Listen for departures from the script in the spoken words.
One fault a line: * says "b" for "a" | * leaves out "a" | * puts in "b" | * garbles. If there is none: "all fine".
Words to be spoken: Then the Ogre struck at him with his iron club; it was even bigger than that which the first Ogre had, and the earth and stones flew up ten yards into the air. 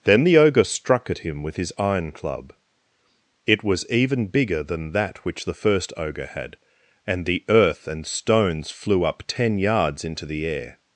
all fine